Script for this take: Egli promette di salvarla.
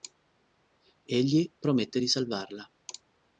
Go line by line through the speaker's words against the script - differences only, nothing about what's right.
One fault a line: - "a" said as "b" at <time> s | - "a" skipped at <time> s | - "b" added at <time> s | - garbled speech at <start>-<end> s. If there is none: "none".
none